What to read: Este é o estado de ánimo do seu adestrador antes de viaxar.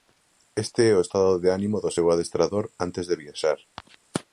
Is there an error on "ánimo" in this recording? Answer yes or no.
no